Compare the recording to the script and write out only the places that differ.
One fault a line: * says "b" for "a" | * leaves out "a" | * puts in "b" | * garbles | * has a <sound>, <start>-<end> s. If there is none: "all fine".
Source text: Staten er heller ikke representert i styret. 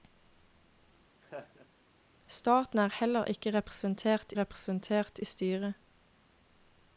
* has a laugh, 1.2-1.7 s
* puts in "representert"